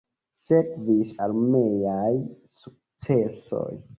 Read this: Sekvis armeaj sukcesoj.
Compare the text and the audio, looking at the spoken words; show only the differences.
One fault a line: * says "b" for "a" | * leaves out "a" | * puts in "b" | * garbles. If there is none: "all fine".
all fine